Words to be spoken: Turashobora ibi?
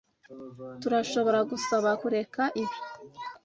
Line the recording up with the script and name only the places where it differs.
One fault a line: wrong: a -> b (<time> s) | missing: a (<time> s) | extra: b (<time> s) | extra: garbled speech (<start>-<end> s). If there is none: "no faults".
extra: gusaba kureka (1.5 s)